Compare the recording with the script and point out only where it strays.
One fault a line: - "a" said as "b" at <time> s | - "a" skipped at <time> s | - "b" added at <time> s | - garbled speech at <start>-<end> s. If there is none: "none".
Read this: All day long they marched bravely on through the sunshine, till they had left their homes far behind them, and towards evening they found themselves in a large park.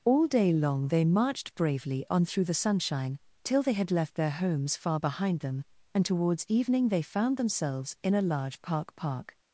- "park" added at 9.0 s